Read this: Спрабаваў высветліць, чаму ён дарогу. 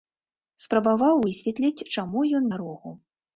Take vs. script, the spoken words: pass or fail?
pass